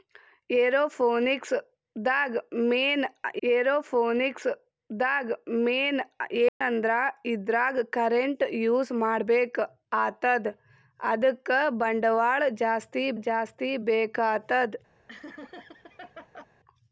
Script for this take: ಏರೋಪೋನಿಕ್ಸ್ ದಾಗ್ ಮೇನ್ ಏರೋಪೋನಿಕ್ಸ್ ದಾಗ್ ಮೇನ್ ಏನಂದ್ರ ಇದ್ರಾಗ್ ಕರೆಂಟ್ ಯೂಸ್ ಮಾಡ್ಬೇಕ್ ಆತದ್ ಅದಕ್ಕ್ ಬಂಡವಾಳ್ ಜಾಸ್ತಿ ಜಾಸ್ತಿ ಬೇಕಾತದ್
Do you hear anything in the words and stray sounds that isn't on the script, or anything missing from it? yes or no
yes